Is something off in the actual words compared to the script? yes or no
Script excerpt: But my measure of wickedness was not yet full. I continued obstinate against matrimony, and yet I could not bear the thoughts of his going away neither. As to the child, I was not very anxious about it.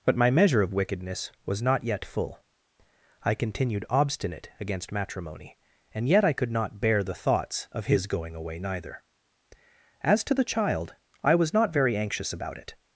no